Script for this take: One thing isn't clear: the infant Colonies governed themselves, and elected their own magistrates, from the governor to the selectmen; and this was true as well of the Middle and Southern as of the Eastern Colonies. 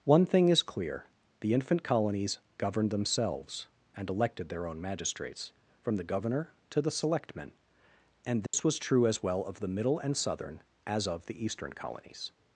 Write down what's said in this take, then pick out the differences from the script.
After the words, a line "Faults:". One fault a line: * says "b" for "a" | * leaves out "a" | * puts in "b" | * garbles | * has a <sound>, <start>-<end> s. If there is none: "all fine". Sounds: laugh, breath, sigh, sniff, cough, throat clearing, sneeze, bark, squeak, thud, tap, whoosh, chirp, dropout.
One thing is clear: the infant Colonies governed themselves, and elected their own magistrates, from the governor to the selectmen; and this was true as well of the Middle and Southern as of the Eastern Colonies.
Faults:
* says "is" for "isn't"
* has a dropout, 8.5-8.5 s